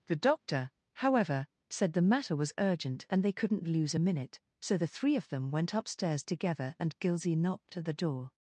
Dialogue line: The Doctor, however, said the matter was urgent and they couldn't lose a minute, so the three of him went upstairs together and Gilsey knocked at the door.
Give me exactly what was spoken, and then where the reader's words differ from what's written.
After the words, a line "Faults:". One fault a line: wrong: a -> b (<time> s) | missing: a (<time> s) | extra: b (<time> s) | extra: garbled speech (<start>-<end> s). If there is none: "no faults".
The Doctor, however, said the matter was urgent and they couldn't lose a minute, so the three of them went upstairs together and Gilsey knocked at the door.
Faults:
wrong: him -> them (5.3 s)